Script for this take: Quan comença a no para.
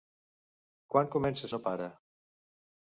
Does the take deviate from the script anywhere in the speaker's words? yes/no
no